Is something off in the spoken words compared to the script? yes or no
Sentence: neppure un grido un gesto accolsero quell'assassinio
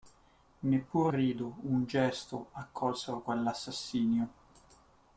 yes